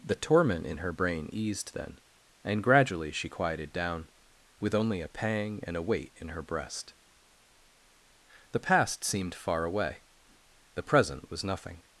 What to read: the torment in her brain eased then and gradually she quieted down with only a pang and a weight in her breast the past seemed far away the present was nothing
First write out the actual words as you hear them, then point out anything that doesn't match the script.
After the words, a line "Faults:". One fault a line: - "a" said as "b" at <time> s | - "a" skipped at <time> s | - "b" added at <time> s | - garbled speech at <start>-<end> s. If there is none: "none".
the torment in her brain eased then and gradually she quieted down with only a pang and a weight in her breast the past seemed far away the present was nothing
Faults:
none